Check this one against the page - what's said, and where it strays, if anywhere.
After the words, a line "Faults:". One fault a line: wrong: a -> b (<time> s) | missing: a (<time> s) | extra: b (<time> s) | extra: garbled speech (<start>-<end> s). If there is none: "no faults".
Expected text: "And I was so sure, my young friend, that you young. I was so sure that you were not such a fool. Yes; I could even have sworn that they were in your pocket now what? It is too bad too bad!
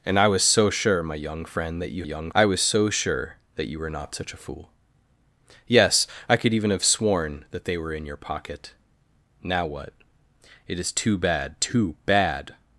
"And I was so sure, my young friend, that you young. I was so sure that you were not such a fool. Yes; I could even have sworn that they were in your pocket now what? It is too bad too bad!
Faults:
no faults